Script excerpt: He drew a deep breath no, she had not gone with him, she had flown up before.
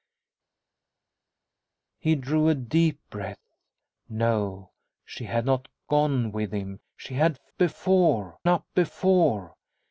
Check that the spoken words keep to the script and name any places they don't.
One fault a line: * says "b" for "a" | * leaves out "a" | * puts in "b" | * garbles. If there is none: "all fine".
* says "before" for "flown"